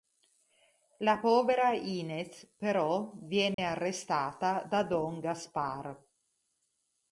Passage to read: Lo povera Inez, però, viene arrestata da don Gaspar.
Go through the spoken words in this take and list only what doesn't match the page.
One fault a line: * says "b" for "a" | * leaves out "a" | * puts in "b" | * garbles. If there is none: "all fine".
* says "La" for "Lo"